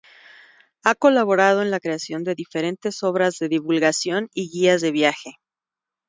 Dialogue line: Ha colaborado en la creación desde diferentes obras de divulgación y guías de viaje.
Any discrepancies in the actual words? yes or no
yes